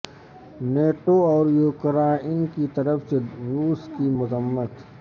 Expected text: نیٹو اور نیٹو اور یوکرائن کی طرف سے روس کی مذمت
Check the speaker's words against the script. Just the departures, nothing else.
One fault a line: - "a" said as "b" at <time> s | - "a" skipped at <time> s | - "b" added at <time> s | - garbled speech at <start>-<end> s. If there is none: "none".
- "نیٹو اور" skipped at 1.4 s